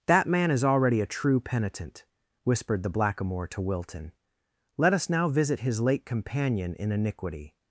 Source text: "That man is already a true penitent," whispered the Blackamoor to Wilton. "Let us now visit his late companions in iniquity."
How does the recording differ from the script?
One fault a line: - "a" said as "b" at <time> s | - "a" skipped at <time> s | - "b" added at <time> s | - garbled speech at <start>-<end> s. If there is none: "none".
- "companions" said as "companion" at 6.1 s